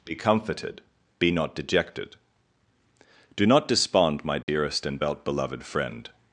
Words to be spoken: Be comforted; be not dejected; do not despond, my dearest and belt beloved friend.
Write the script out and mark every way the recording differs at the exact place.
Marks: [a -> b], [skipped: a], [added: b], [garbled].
Be comforted; be not dejected; do not despond, my dearest and belt beloved friend.